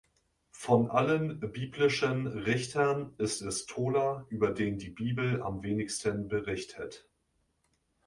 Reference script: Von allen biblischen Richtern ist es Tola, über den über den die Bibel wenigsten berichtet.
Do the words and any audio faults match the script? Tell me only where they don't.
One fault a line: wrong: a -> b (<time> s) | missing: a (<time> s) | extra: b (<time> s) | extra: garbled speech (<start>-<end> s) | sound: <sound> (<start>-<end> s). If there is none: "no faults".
missing: über den (4.8 s)
extra: am (5.4 s)